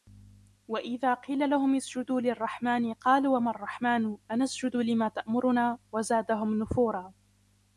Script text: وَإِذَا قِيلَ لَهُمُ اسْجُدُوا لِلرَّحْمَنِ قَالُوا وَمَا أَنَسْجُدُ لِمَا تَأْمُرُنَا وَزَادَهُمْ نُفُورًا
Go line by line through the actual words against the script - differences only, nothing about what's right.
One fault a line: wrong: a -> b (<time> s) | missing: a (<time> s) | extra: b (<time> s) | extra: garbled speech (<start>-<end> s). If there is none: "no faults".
extra: الرَّحْمَنُ (3.5 s)